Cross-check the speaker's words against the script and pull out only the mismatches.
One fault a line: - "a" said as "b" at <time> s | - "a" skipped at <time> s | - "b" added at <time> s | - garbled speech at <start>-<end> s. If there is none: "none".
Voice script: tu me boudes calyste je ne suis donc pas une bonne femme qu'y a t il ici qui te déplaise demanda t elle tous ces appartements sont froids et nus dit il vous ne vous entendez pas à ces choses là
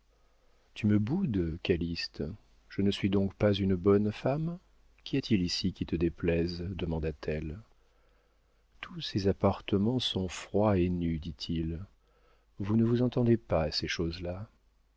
none